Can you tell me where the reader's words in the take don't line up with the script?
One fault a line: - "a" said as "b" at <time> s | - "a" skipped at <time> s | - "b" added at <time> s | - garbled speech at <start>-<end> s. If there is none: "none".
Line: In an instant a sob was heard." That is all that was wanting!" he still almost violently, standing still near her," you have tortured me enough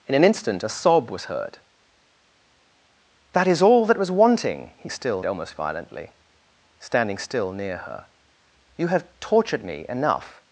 none